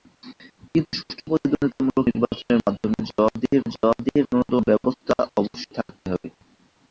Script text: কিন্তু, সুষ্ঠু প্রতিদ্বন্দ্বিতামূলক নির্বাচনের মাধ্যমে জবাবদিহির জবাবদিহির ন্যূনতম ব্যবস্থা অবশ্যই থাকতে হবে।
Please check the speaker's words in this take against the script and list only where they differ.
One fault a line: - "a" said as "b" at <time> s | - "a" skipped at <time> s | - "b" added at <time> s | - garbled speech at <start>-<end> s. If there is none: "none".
none